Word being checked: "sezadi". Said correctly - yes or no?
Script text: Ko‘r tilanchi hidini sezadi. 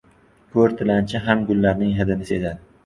yes